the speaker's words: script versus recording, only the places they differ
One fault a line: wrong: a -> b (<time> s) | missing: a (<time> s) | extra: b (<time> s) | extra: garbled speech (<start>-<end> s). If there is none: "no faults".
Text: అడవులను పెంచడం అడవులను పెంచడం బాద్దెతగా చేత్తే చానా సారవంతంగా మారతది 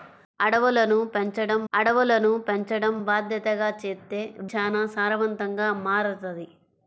no faults